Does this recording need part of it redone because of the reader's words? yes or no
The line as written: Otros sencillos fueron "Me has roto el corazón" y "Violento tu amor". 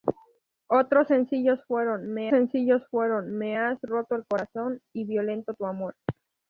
yes